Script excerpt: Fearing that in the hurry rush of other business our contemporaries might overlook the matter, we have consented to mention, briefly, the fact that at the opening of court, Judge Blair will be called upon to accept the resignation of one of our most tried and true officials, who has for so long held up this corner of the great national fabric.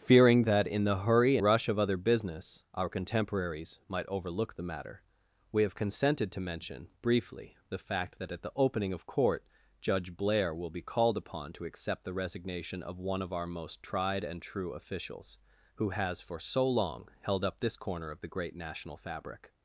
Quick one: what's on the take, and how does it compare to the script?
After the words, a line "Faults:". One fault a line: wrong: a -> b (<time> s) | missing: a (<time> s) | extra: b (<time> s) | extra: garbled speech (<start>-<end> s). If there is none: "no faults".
Fearing that in the hurry rush of other business our contemporaries might overlook the matter, we have consented to mention, briefly, the fact that at the opening of court, Judge Blair will be called upon to accept the resignation of one of our most tried and true officials, who has for so long held up this corner of the great national fabric.
Faults:
no faults